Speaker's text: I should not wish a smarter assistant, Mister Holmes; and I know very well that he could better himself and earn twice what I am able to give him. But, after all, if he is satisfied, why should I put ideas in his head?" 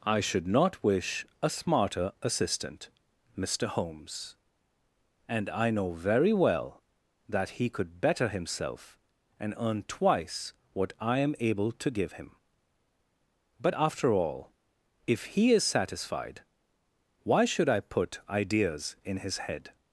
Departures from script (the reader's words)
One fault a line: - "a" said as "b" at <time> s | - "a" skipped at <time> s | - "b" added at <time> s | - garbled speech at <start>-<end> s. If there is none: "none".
none